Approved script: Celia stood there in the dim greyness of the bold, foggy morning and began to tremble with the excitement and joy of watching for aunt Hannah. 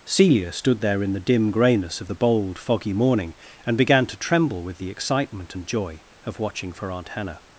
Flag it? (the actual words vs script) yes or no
no